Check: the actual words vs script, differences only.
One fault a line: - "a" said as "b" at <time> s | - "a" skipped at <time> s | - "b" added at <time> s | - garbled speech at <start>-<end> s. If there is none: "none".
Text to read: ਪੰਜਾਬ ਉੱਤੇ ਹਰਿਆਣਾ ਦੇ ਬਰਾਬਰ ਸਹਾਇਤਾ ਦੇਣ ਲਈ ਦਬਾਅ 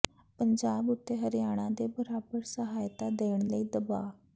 none